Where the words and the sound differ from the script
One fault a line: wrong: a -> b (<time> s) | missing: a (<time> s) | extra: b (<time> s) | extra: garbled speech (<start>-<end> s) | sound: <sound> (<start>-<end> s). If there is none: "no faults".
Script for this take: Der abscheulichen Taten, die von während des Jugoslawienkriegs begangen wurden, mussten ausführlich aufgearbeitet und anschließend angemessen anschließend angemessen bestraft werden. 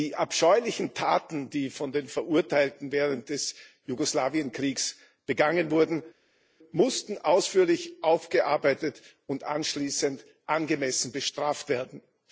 wrong: Der -> Die (0.0 s)
extra: den Verurteilten (1.9 s)
missing: anschließend angemessen (11.1 s)